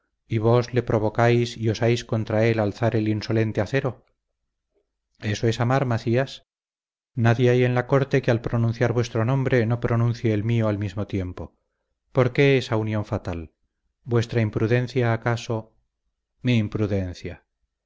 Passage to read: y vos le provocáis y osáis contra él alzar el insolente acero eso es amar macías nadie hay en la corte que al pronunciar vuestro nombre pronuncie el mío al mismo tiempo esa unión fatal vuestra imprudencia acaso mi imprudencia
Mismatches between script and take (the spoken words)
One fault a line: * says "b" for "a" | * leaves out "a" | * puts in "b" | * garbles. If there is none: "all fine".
* puts in "no"
* puts in "por qué"